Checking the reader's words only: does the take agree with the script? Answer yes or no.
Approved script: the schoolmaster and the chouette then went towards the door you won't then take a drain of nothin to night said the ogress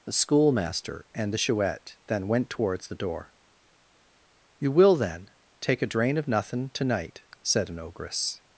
no